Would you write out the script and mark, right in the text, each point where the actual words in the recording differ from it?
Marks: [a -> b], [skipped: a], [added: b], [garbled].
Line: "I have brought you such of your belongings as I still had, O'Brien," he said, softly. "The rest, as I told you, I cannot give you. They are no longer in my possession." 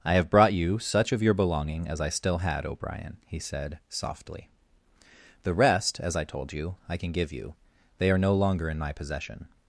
"I have brought you such of your [belongings -> belonging] as I still had, O'Brien," he said, softly. "The rest, as I told you, I [cannot -> can] give you. They are no longer in my possession."